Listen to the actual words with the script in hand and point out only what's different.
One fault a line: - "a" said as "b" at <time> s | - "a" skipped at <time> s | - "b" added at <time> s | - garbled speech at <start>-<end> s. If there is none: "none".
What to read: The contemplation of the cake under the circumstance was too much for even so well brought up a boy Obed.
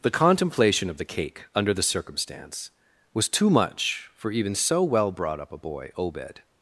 none